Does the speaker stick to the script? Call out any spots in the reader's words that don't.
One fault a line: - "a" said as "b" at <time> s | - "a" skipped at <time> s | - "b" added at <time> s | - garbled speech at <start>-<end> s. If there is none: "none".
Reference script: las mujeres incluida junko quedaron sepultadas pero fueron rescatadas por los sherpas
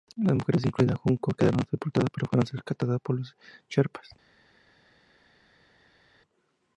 none